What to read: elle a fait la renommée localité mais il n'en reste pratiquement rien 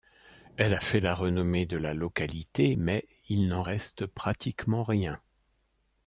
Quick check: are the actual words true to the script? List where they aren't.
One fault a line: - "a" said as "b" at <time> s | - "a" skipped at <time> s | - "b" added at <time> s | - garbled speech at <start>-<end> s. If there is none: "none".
- "de la" added at 1.7 s